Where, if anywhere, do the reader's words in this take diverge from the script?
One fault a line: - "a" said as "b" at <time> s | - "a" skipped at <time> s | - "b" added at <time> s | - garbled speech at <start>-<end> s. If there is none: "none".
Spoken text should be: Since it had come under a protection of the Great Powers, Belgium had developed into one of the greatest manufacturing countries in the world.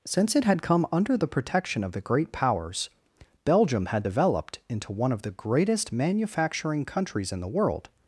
- "a" said as "the" at 1.1 s